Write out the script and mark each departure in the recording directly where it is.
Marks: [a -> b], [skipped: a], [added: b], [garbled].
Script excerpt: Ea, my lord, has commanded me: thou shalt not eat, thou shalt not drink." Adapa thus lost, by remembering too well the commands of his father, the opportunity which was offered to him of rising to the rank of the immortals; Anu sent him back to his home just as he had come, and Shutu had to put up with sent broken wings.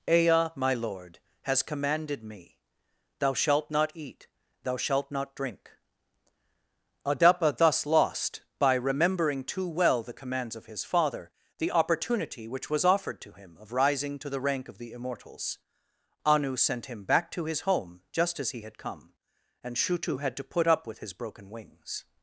Ea, my lord, has commanded me: thou shalt not eat, thou shalt not drink." Adapa thus lost, by remembering too well the commands of his father, the opportunity which was offered to him of rising to the rank of the immortals; Anu sent him back to his home just as he had come, and Shutu had to put up with [sent -> his] broken wings.